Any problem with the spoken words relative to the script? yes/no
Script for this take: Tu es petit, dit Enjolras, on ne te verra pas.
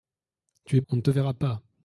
yes